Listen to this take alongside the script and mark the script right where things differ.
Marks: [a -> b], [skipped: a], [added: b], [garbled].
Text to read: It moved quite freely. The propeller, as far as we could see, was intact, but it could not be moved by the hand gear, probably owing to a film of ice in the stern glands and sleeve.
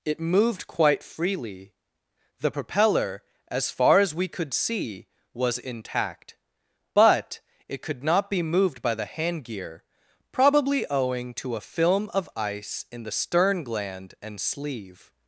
It moved quite freely. The propeller, as far as we could see, was intact, but it could not be moved by the hand gear, probably owing to a film of ice in the stern [glands -> gland] and sleeve.